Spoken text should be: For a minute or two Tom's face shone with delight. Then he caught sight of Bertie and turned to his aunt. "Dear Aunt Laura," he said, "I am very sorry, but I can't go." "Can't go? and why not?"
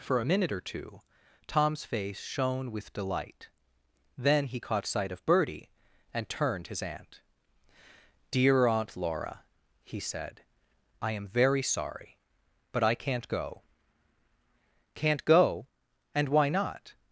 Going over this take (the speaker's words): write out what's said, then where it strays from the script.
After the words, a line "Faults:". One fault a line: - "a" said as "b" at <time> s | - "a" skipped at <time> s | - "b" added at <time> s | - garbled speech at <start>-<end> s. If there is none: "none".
For a minute or two Tom's face shone with delight. Then he caught sight of Bertie and turned his aunt. "Dear Aunt Laura," he said, "I am very sorry, but I can't go." "Can't go? and why not?"
Faults:
- "to" skipped at 6.7 s